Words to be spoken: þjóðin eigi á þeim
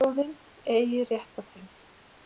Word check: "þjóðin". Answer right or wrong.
right